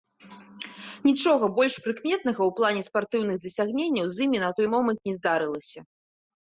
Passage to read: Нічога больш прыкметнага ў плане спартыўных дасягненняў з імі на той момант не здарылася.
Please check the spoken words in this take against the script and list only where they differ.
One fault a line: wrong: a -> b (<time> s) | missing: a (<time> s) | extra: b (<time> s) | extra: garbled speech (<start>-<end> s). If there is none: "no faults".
no faults